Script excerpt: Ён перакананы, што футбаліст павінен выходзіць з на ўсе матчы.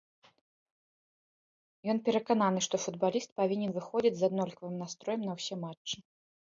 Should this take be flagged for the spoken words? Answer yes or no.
yes